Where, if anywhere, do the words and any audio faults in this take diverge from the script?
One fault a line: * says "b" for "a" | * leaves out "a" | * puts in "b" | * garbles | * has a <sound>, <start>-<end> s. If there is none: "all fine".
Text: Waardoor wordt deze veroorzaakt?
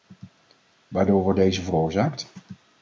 all fine